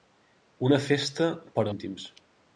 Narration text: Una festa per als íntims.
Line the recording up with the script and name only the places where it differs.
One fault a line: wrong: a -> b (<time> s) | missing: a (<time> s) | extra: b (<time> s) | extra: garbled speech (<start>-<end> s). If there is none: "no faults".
missing: als (1.7 s)